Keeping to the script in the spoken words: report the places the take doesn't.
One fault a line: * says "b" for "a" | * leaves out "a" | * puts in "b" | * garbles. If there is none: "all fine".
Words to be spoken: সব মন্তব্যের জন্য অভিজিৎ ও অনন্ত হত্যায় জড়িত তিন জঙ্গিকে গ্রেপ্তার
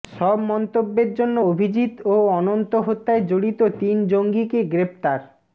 all fine